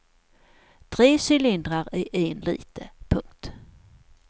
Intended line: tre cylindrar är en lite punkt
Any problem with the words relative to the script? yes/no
no